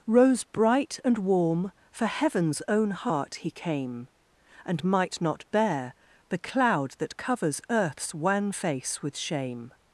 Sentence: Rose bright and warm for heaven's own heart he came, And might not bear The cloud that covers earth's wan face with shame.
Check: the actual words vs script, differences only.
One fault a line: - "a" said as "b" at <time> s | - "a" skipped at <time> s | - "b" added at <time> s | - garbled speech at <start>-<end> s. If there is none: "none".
none